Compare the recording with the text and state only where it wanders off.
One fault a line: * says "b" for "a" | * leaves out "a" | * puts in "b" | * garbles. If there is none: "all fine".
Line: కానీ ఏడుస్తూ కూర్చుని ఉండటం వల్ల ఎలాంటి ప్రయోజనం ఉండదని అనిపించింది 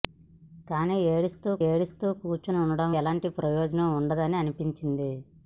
* puts in "ఏడుస్తూ"
* leaves out "వల్ల"